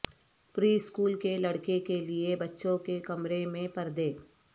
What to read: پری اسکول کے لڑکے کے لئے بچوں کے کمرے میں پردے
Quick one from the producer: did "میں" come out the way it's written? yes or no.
yes